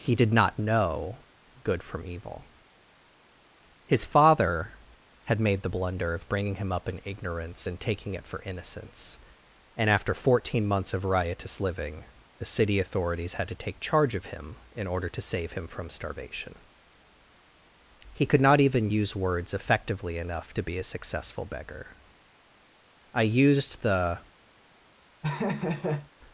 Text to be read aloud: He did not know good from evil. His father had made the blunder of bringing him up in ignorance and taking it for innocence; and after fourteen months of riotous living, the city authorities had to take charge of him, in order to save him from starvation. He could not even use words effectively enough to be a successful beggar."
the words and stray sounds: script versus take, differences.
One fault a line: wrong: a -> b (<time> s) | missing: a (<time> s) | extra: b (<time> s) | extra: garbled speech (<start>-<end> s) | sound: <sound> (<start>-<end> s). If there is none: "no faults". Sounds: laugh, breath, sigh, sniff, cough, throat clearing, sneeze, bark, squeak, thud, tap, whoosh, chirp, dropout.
extra: I used the (23.1 s)
sound: laugh (25.2-26.1 s)